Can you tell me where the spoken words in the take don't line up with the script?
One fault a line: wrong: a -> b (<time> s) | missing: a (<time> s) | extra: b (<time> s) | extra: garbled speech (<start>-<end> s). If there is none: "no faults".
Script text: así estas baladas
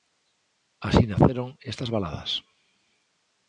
extra: naceron (1.1 s)